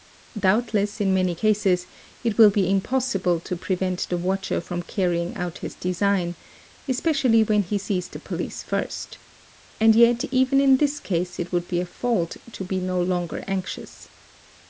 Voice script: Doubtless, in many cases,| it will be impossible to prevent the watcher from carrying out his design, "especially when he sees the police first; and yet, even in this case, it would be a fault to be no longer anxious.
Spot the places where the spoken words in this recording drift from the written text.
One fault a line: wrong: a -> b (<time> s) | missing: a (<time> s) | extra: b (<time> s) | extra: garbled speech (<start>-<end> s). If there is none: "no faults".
no faults